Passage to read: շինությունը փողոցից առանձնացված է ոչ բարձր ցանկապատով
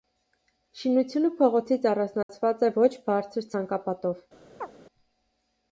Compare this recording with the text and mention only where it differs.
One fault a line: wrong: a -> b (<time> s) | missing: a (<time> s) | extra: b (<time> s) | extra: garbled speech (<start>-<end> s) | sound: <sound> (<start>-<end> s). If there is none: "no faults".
sound: dropout (2.2-2.3 s)
sound: chirp (4.6-4.7 s)